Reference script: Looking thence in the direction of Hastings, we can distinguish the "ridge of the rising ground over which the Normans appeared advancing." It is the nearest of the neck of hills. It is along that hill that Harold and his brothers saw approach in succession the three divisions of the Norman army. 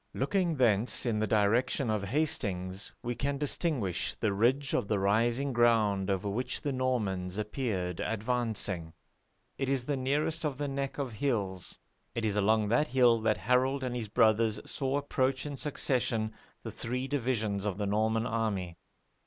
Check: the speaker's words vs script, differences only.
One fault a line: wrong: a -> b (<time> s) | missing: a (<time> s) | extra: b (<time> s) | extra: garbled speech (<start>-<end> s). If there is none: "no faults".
no faults